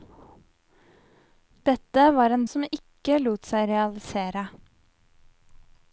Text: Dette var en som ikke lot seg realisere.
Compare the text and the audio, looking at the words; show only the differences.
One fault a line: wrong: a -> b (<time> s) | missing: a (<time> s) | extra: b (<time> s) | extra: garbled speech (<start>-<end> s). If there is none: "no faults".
no faults